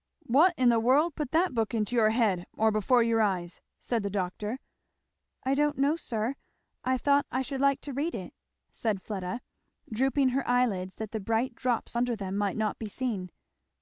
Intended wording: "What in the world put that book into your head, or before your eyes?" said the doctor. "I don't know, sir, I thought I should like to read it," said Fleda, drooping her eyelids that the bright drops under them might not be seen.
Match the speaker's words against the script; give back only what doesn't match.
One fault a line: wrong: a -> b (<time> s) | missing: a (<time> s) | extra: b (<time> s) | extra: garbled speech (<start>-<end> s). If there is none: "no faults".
no faults